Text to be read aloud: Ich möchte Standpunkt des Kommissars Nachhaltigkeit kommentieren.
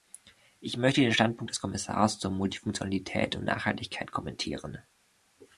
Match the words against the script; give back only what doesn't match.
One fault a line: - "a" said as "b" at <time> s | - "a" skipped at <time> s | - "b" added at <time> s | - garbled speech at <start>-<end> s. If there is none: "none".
- "den" added at 1.0 s
- "zur Multifunktionalität und" added at 2.2 s